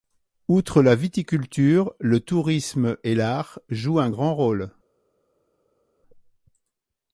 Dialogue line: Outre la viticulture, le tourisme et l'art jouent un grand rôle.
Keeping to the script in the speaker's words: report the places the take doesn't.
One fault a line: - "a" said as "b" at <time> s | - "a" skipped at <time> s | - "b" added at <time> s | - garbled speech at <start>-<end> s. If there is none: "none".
none